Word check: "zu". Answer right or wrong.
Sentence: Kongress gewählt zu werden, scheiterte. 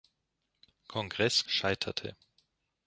wrong